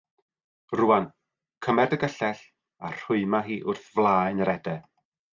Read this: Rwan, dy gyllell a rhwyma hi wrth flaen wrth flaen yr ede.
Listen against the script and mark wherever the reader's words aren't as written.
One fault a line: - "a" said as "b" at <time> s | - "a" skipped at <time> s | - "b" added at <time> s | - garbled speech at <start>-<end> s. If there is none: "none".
- "cymer" added at 1.7 s
- "wrth flaen" skipped at 4.4 s